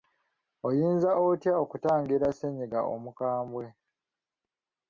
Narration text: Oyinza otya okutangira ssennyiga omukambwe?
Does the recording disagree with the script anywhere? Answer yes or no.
no